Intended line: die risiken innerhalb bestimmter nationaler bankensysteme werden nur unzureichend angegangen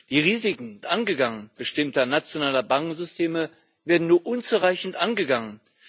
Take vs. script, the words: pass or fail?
fail